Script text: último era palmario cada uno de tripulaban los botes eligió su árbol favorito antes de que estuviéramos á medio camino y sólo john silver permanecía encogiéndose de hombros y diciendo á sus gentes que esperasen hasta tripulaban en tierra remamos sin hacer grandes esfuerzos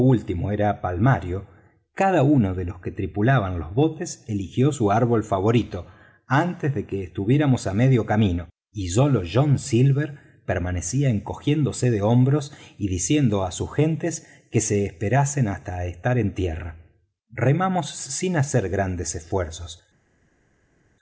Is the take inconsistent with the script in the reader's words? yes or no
yes